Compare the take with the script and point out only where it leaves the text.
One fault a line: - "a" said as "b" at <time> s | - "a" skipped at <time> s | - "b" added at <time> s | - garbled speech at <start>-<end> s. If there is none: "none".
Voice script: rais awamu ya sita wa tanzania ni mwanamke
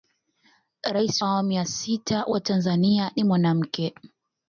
none